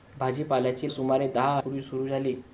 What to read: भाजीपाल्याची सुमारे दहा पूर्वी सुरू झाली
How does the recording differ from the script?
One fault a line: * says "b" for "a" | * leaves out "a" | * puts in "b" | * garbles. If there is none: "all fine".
all fine